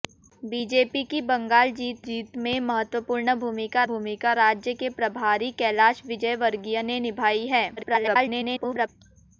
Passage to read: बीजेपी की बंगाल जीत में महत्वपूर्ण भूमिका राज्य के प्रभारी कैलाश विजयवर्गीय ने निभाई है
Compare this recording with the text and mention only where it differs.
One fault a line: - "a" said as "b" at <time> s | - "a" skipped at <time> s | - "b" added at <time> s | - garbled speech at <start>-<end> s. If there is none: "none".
- "जीत" added at 2.0 s
- "भूमिका" added at 3.8 s
- garbled speech at 7.8-8.9 s